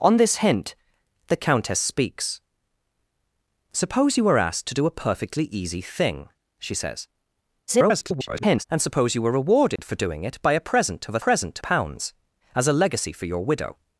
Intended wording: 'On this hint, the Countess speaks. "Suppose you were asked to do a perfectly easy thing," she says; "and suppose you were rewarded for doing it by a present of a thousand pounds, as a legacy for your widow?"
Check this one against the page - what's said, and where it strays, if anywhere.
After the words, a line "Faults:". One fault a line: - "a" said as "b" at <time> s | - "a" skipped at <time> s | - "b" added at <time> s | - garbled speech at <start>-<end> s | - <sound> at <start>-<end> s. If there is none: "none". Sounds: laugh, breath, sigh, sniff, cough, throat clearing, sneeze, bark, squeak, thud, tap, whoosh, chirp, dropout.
'On this hint, the Countess speaks. "Suppose you were asked to do a perfectly easy thing," she says; [garbled] "and suppose you were rewarded for doing it by a present of a present pounds, as a legacy for your widow?"
Faults:
- garbled speech at 7.7-8.6 s
- dropout at 9.8-9.8 s
- "thousand" said as "present" at 11.2 s